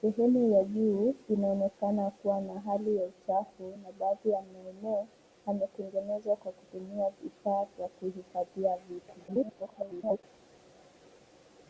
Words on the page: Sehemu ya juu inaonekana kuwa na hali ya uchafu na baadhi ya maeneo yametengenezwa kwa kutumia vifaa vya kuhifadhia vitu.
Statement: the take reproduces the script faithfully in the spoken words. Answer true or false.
false